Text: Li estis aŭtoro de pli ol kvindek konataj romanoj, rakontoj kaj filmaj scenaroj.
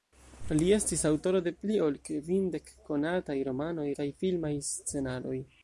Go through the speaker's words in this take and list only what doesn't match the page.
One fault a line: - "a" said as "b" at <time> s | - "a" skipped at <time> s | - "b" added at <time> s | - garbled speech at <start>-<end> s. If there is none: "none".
- "rakontoj" skipped at 3.9 s